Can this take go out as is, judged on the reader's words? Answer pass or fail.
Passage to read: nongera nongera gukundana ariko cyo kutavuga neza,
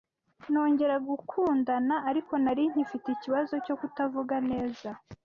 fail